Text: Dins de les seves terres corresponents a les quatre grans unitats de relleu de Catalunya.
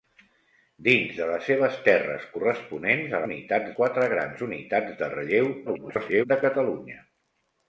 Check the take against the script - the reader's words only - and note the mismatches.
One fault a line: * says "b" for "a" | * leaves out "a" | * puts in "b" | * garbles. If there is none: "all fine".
* says "unitats" for "les"
* garbles